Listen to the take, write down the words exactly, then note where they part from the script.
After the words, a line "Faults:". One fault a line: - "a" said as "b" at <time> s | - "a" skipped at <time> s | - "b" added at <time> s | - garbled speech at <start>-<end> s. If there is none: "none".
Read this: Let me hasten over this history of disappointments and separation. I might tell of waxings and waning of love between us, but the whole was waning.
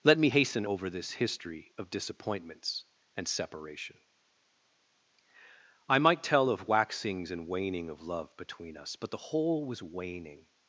Let me hasten over this history of disappointments and separation. I might tell of waxings and waning of love between us, but the whole was waning.
Faults:
none